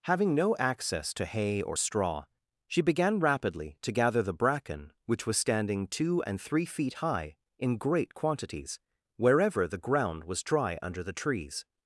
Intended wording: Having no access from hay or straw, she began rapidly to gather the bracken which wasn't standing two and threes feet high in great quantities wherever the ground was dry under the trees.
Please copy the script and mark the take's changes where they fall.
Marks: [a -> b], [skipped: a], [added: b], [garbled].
Having no access [from -> to] hay or straw, she began rapidly to gather the bracken which [wasn't -> was] standing two and [threes -> three] feet high in great quantities wherever the ground was dry under the trees.